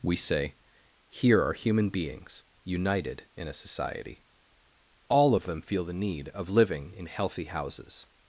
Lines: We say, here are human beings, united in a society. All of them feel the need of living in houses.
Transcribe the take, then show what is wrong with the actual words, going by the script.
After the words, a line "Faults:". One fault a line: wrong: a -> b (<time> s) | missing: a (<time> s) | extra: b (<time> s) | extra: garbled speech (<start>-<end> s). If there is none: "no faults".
We say, here are human beings, united in a society. All of them feel the need of living in healthy houses.
Faults:
extra: healthy (7.1 s)